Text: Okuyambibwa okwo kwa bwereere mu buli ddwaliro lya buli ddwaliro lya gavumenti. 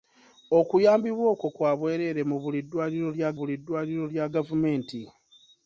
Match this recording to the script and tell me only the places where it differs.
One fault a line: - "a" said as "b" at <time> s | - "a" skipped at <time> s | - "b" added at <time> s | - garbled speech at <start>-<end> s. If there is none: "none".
none